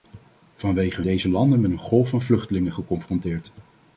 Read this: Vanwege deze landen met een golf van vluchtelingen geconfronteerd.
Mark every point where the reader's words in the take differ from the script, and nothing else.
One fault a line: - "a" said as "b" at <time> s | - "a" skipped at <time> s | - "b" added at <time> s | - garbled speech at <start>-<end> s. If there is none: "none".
none